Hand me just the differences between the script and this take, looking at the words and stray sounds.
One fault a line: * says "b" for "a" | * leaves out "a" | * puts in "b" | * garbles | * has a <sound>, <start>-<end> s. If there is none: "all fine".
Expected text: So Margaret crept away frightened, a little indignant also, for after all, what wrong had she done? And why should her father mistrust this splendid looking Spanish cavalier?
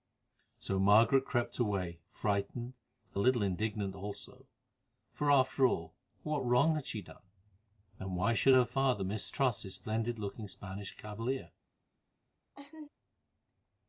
* has a laugh, 12.5-12.9 s